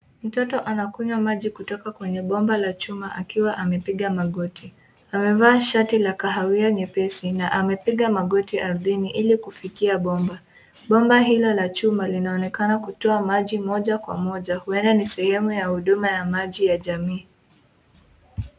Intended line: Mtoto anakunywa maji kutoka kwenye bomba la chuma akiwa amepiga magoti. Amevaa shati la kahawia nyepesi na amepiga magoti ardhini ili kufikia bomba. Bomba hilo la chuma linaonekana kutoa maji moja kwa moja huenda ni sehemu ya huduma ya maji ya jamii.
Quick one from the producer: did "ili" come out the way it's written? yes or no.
yes